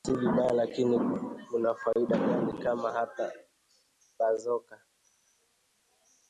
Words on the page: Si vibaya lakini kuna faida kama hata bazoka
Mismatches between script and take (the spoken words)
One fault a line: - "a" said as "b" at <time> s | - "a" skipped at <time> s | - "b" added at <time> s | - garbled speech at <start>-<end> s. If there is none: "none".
- "gani" added at 2.2 s